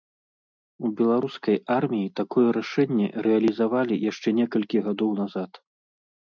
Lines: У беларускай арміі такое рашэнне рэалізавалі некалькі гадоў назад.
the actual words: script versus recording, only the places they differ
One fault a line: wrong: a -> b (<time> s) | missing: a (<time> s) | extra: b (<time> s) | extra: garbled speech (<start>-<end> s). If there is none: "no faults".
extra: яшчэ (4.1 s)